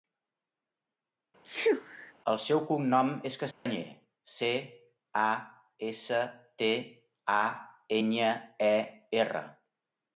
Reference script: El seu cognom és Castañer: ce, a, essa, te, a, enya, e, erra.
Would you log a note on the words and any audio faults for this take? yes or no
yes